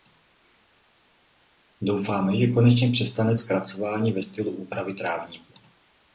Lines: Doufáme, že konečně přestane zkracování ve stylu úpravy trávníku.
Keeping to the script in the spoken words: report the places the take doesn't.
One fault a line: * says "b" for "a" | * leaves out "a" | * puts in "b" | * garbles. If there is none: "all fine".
all fine